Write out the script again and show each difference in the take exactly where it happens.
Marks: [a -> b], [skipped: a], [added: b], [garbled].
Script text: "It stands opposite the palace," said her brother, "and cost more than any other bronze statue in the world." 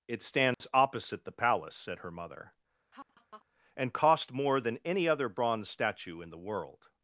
"It stands opposite the palace," said her [brother, -> mother] "and cost more than any other bronze statue in the world."